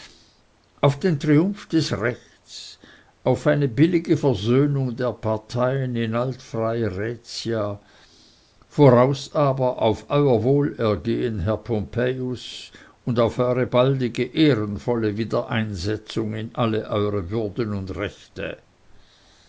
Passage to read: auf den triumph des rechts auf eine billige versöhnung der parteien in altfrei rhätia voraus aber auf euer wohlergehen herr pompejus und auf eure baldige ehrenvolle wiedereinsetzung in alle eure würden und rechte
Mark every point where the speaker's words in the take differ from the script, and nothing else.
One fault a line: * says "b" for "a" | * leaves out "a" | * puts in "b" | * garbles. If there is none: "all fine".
all fine